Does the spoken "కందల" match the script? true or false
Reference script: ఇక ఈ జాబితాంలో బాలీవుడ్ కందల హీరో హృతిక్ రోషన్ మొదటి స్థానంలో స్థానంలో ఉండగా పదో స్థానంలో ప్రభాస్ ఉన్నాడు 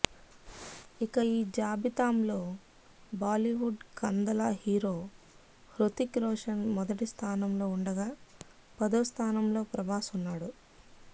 true